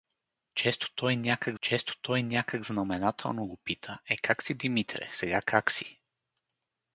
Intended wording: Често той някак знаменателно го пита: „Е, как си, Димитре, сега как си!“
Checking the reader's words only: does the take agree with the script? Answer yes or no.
no